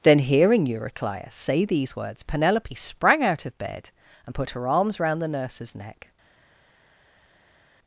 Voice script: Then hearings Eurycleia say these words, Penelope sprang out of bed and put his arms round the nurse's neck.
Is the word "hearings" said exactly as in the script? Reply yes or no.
no